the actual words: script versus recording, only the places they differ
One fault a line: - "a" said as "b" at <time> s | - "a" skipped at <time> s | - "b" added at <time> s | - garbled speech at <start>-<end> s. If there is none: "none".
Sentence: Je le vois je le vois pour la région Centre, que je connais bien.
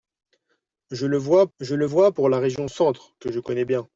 none